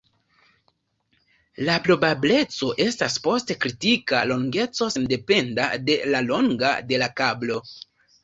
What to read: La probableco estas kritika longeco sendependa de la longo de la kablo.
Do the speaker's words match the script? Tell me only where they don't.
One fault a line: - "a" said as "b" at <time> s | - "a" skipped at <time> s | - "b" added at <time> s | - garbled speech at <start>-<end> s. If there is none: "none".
- "post" added at 3.3 s